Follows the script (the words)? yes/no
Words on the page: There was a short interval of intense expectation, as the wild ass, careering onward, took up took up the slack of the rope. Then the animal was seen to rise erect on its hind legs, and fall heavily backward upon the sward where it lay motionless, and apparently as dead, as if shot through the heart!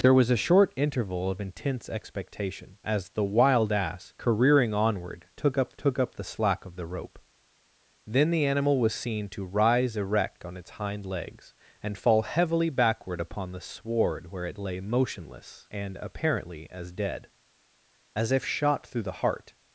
yes